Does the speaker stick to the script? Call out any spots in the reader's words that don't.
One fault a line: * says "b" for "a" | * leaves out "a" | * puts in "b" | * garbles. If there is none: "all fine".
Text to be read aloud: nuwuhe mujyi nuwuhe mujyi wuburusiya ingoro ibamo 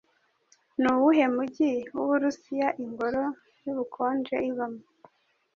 * leaves out "nuwuhe mujyi"
* puts in "yubukonje"